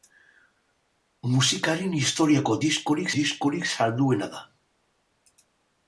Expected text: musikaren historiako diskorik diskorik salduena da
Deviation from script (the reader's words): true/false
false